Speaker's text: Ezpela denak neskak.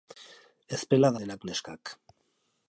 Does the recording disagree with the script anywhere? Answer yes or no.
no